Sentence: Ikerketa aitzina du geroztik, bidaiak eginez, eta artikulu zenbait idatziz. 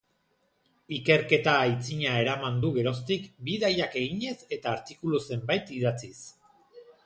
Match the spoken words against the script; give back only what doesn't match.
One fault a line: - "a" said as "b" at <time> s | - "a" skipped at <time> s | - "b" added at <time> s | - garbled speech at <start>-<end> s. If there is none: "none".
- "eraman" added at 2.2 s